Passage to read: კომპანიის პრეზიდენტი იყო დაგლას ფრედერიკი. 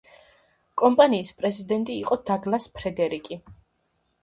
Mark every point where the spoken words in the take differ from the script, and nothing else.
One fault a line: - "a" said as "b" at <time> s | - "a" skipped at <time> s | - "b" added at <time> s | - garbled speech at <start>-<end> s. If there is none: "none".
none